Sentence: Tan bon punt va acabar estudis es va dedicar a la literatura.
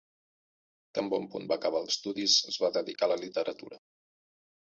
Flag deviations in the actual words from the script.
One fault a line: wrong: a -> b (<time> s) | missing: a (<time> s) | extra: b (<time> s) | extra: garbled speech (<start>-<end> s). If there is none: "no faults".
no faults